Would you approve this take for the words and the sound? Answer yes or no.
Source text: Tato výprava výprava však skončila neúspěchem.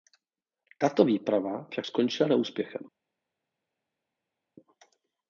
no